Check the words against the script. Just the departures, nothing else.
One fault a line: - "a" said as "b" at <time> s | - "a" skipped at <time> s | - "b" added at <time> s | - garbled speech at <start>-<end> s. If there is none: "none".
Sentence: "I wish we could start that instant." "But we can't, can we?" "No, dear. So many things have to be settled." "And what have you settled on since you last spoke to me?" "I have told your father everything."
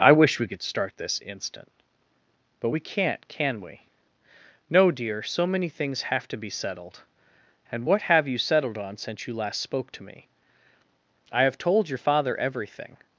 - "that" said as "this" at 1.0 s